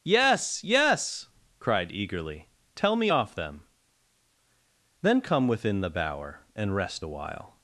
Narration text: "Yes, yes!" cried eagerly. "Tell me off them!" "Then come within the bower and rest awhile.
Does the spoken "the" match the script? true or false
true